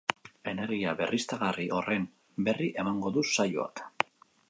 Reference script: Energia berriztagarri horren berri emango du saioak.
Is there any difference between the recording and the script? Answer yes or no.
no